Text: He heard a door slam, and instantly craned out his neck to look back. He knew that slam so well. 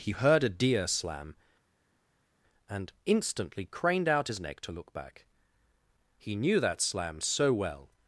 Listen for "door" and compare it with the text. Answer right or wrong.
wrong